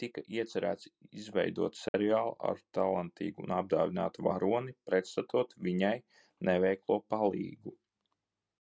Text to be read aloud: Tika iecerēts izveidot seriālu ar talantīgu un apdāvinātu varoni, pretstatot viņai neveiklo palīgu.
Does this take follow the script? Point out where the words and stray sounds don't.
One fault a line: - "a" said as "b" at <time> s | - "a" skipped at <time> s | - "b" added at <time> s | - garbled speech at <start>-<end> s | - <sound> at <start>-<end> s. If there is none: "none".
- dropout at 1.9-1.9 s